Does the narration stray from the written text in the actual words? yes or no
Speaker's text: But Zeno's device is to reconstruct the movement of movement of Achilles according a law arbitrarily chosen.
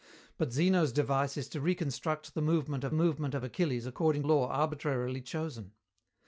no